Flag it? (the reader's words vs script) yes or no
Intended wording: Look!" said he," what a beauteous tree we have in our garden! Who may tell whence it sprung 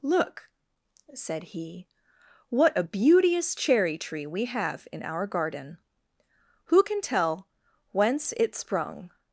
yes